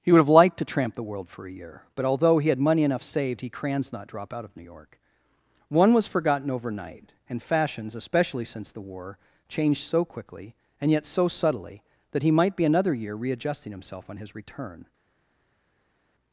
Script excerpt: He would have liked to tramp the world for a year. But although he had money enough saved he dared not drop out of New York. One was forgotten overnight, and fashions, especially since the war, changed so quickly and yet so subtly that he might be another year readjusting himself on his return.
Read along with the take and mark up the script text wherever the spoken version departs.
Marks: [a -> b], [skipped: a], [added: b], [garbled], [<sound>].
He would have liked to tramp the world for a year. But although he had money enough saved he [dared -> crans] not drop out of New York. One was forgotten overnight, and fashions, especially since the war, changed so quickly and yet so subtly that he might be another year readjusting himself on his return.